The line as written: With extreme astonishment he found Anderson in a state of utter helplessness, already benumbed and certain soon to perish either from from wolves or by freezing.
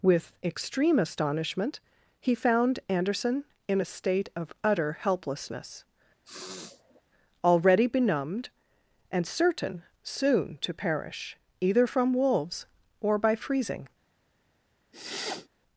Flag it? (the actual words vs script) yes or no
yes